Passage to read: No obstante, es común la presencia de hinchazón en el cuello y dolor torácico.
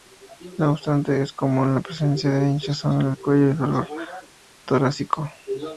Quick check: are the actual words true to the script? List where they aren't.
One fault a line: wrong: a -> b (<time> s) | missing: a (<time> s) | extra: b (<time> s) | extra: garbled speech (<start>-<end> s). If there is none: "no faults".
no faults